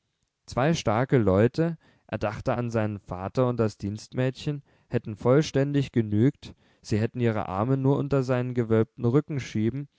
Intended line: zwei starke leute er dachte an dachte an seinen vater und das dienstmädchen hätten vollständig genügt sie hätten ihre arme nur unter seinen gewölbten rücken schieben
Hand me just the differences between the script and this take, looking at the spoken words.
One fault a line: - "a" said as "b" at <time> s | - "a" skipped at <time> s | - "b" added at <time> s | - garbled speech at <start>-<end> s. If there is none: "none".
- "dachte an" skipped at 2.7 s